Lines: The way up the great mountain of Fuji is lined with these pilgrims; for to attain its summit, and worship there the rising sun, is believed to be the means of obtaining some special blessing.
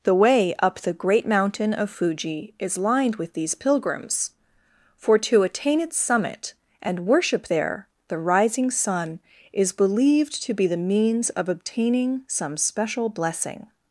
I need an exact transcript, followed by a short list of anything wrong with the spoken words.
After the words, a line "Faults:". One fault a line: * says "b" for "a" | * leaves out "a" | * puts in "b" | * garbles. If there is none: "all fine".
The way up the great mountain of Fuji is lined with these pilgrims; for to attain its summit, and worship there the rising sun, is believed to be the means of obtaining some special blessing.
Faults:
all fine